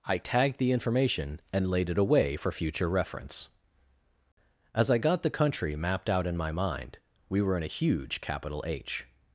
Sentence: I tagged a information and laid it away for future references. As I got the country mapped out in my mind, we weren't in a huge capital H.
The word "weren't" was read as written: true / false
false